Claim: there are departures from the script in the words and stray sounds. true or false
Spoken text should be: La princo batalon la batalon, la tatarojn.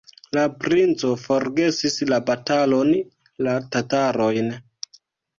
true